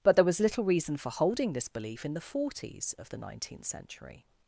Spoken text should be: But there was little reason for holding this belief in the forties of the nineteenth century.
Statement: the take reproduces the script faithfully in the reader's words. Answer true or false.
true